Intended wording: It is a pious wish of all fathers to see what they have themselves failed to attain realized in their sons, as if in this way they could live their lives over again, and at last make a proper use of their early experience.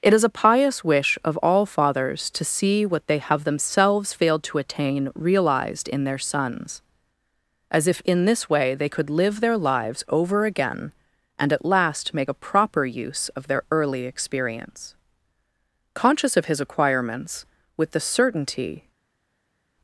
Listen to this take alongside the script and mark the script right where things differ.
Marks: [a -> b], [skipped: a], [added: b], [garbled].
It is a pious wish of all fathers to see what they have themselves failed to attain realized in their sons, as if in this way they could live their lives over again, and at last make a proper use of their early experience. [added: Conscious of his acquirements with the certainty]